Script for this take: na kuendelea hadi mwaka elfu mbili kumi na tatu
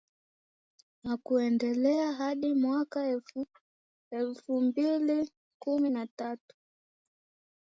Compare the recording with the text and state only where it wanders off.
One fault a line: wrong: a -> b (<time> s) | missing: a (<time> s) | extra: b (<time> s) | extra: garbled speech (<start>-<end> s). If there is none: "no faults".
no faults